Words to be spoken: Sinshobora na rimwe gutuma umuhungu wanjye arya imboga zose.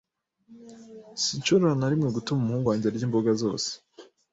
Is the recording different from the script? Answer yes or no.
no